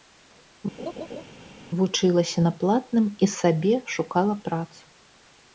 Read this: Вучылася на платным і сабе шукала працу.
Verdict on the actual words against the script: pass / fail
pass